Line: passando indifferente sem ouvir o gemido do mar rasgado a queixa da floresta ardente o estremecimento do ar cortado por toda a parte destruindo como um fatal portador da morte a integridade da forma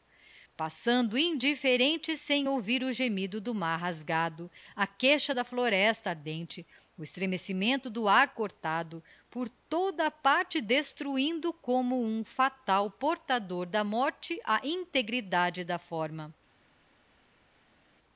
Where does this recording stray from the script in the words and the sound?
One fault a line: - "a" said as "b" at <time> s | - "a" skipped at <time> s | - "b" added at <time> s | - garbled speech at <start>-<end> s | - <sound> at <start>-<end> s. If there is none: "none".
none